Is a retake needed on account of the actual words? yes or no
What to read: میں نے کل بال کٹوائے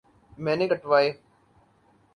yes